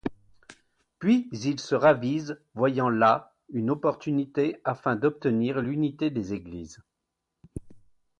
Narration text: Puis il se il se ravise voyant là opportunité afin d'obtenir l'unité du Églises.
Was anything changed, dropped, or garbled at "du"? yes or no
yes